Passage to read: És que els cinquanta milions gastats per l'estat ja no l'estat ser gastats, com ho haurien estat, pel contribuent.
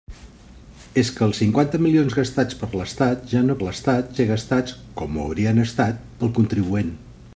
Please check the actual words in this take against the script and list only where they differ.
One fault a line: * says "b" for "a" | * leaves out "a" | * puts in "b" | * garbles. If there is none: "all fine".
all fine